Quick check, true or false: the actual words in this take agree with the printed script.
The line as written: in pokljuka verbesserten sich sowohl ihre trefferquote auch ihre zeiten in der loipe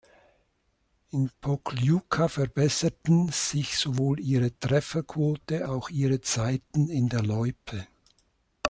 true